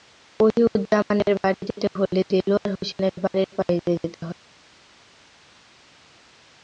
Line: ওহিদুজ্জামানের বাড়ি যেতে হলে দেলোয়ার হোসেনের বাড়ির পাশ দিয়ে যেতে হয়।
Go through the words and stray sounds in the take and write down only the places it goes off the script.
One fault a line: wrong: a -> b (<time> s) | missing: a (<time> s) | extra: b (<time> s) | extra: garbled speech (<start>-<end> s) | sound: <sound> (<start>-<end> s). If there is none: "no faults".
no faults